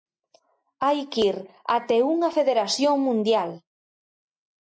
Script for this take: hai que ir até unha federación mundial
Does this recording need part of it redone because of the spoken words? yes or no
no